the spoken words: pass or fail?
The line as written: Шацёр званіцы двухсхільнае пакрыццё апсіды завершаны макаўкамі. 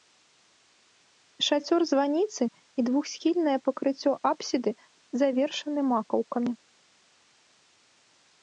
fail